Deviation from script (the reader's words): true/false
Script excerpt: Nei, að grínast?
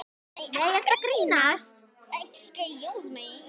true